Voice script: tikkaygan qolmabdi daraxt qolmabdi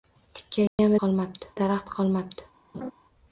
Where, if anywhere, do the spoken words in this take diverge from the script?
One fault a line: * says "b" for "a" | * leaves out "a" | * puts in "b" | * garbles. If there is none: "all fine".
all fine